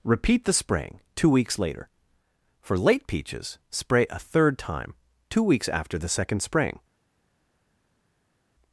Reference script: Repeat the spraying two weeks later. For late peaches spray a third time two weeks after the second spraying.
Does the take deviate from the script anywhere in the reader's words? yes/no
no